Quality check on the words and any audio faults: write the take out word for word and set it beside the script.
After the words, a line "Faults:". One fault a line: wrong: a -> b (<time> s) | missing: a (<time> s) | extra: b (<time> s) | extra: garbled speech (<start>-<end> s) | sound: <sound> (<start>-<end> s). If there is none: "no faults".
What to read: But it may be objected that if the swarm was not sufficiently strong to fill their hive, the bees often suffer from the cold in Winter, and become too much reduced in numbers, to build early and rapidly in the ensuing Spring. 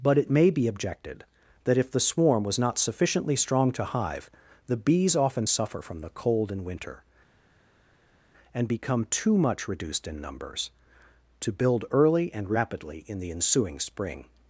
But it may be objected that if the swarm was not sufficiently strong to hive, the bees often suffer from the cold in Winter, and become too much reduced in numbers, to build early and rapidly in the ensuing Spring.
Faults:
missing: fill their (3.9 s)